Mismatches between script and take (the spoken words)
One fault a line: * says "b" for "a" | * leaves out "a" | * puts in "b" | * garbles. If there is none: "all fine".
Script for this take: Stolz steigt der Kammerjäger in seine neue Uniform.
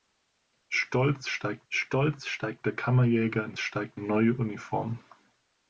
* puts in "stolz steigt"
* says "steigt" for "seine"